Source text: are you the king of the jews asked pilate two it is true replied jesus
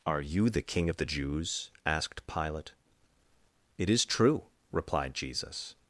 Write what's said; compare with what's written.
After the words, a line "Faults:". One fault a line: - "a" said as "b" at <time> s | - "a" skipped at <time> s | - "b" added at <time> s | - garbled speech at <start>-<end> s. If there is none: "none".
are you the king of the jews asked pilate it is true replied jesus
Faults:
- "two" skipped at 2.7 s